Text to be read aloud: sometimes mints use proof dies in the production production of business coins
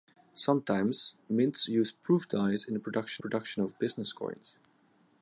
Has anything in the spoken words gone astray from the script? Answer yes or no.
no